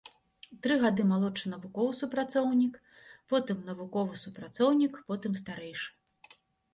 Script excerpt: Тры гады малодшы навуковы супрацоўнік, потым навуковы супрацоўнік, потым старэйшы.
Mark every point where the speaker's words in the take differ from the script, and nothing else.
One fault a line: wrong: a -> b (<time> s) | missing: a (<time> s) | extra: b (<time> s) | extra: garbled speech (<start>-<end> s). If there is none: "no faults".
no faults